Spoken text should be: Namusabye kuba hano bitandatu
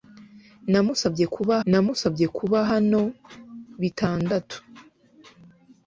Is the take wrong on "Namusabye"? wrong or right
right